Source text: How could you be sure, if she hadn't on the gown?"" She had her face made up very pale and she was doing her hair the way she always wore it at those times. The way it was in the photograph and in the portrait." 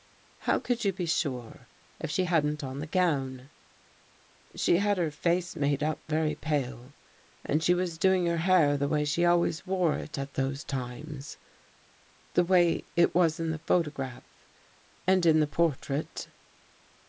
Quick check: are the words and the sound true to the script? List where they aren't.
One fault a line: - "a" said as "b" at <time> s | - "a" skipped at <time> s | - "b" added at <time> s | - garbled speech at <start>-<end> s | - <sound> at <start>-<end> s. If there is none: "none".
none